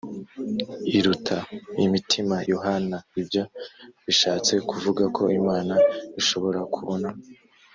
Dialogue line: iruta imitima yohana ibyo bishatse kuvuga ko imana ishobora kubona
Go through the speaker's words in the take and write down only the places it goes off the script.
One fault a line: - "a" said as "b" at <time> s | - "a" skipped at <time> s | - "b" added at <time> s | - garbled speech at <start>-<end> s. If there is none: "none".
none